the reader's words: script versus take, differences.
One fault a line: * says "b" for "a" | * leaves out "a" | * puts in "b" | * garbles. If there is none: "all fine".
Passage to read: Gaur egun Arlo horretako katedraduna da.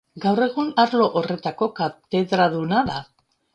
all fine